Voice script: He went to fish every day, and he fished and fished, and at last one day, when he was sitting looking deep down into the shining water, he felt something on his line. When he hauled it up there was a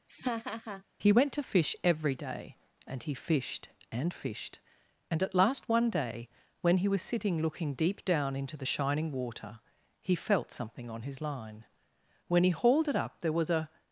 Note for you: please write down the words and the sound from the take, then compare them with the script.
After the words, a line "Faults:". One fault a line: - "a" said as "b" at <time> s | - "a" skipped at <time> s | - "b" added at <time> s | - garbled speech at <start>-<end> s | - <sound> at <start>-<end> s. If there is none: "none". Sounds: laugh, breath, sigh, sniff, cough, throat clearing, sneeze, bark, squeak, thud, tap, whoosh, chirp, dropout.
He went to fish every day, and he fished and fished, and at last one day, when he was sitting looking deep down into the shining water, he felt something on his line. When he hauled it up there was a
Faults:
- laugh at 0.1-0.8 s